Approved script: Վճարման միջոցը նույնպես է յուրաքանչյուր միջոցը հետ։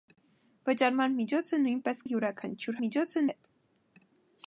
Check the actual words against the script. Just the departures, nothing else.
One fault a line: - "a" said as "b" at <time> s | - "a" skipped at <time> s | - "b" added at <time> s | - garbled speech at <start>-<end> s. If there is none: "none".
none